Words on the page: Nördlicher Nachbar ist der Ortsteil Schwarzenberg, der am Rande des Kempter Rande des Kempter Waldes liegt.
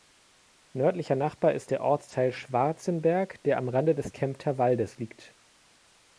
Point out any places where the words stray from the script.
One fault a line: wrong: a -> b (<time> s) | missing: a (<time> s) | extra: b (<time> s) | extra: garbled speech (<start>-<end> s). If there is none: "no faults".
missing: Rande des Kempter (4.6 s)